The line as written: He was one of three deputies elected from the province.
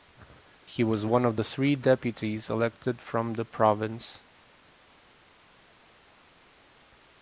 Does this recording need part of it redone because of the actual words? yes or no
no